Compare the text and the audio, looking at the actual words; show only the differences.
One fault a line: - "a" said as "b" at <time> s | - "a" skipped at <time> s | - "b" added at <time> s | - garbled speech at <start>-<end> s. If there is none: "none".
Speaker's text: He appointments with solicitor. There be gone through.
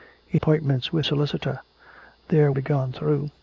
none